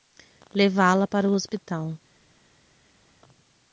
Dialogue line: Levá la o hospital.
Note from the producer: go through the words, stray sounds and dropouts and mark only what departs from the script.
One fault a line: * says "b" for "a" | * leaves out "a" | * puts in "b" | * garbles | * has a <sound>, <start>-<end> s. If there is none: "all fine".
* puts in "para"